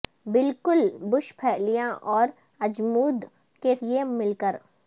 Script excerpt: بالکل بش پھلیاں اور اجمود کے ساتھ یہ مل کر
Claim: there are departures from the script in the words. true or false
true